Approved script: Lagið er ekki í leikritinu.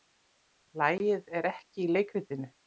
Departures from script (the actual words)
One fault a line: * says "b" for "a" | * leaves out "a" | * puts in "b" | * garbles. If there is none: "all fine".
all fine